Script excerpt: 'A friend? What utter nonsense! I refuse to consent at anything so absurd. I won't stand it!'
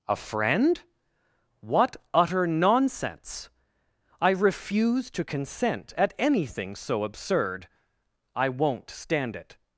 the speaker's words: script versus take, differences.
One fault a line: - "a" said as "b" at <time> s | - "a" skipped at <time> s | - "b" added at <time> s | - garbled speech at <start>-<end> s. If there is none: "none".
none